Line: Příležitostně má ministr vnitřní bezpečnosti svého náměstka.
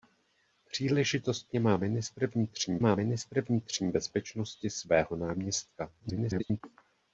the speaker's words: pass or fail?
fail